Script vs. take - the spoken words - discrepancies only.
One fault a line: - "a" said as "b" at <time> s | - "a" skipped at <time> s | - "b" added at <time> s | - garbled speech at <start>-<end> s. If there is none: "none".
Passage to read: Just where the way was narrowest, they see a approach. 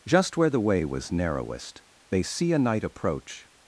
- "knight" added at 2.6 s